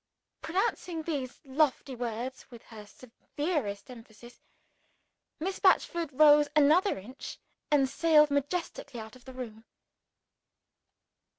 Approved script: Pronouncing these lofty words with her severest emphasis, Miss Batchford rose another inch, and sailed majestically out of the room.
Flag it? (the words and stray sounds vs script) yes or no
no